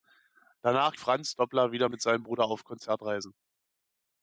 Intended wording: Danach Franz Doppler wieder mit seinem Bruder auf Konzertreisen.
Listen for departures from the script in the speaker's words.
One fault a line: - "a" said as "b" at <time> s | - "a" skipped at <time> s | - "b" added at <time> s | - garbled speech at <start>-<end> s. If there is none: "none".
none